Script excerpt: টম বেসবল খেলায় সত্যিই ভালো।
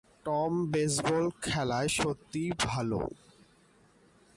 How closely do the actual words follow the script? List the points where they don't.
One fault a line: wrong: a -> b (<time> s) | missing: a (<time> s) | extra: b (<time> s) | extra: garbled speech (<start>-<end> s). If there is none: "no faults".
no faults